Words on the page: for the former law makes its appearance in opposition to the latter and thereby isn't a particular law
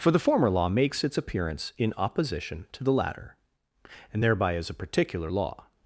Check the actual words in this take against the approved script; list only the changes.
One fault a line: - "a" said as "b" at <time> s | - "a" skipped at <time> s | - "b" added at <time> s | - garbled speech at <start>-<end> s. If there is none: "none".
- "isn't" said as "is" at 4.5 s